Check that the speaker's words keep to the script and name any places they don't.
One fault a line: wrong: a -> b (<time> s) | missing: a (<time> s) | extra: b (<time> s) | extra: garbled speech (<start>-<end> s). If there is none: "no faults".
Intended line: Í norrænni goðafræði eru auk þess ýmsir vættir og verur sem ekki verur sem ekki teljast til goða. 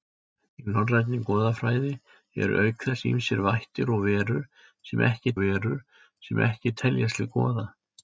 no faults